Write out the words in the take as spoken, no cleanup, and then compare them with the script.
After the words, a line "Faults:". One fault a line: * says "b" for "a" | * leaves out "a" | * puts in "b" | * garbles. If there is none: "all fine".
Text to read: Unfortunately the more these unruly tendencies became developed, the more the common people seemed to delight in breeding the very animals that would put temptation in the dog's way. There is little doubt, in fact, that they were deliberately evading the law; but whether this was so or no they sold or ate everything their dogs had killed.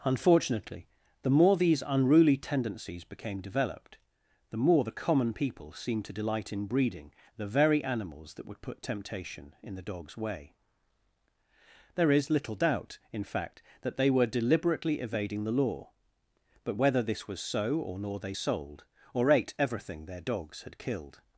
Unfortunately the more these unruly tendencies became developed, the more the common people seemed to delight in breeding the very animals that would put temptation in the dog's way. There is little doubt, in fact, that they were deliberately evading the law; but whether this was so or nor they sold or ate everything their dogs had killed.
Faults:
* says "nor" for "no"